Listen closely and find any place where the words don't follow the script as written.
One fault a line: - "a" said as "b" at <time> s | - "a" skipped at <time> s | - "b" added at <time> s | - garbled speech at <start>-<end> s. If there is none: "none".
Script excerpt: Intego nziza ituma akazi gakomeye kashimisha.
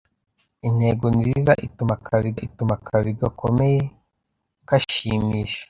- "ituma akazi" added at 2.4 s